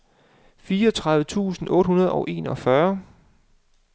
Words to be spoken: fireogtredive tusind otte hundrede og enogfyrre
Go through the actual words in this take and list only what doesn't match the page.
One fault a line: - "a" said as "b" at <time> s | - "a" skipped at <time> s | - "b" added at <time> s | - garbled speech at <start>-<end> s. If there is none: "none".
none